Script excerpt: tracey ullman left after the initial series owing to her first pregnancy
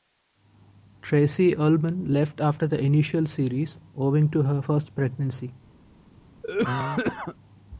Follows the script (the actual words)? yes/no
yes